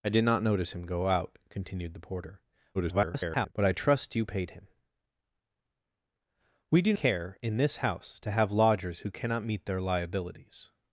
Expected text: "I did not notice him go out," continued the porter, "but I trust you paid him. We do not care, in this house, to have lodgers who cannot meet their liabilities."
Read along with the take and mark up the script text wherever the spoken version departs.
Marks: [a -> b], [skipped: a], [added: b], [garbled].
"I did not notice him go out," continued the porter, [garbled] "but I trust you paid him. We do [skipped: not] care, in this house, to have lodgers who cannot meet their liabilities."